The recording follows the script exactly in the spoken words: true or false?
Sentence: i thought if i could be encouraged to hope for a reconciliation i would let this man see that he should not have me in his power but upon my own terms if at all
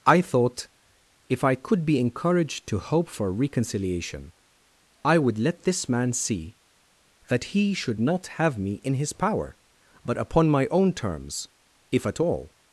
false